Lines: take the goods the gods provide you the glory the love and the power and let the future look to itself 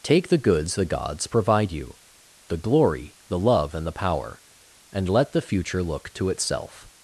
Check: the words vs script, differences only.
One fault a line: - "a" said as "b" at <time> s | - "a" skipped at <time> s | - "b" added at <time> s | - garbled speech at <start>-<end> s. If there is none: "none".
none